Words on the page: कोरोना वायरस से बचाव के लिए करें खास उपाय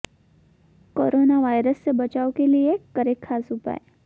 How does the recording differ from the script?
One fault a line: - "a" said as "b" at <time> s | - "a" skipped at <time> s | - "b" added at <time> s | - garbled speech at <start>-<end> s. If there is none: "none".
none